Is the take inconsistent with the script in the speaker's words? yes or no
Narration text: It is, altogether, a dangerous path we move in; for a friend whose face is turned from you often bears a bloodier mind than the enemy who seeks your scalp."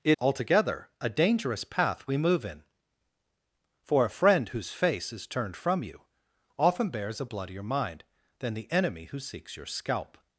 yes